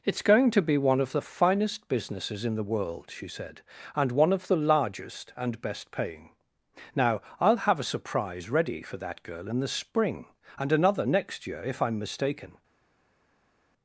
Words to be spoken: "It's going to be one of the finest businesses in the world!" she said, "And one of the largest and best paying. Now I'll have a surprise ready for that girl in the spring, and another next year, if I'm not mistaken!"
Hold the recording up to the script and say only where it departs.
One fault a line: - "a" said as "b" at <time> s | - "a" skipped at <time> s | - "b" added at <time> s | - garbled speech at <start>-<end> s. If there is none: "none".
- "not" skipped at 12.0 s